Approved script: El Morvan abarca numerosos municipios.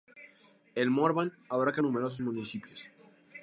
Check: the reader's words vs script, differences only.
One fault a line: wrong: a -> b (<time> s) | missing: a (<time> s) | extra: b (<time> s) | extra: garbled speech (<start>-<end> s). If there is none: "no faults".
no faults